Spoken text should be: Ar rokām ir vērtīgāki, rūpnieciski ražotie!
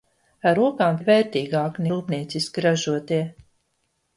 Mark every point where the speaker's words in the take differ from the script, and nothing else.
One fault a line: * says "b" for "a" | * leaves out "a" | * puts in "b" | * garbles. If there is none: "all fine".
all fine